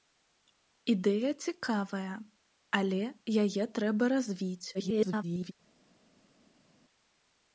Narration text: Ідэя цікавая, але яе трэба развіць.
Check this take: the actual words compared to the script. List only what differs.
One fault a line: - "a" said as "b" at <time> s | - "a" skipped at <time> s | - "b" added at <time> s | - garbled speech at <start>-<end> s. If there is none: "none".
- garbled speech at 4.7-5.5 s